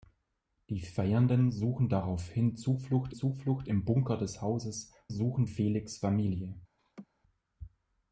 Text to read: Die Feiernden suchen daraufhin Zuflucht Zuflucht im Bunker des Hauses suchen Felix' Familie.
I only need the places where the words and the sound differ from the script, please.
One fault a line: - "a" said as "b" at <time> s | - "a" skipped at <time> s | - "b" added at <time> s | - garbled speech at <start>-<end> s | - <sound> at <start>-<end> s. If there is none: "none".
- laugh at 6.8-7.1 s